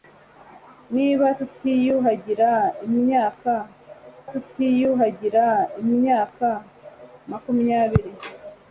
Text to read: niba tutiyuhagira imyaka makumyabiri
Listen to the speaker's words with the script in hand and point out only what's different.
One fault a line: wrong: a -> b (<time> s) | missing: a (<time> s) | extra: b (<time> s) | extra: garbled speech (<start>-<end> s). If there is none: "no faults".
extra: tutiyuhagira imyaka (4.3 s)